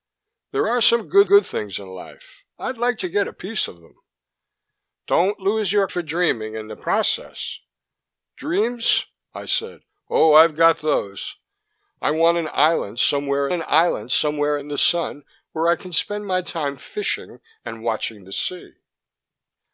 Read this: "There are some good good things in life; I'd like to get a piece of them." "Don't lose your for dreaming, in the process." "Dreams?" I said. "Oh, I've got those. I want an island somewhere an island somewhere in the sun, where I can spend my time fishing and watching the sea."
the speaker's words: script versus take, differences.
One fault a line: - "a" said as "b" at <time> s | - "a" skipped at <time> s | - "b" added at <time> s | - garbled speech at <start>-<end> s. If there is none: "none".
none